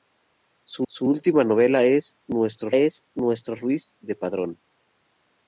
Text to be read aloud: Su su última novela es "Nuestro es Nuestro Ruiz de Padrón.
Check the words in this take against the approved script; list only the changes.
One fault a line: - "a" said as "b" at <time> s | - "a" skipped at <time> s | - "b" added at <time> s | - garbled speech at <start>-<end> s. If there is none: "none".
none